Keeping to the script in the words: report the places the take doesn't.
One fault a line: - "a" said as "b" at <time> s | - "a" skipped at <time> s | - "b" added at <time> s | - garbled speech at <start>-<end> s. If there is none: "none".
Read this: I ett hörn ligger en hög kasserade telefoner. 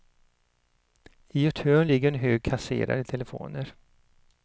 none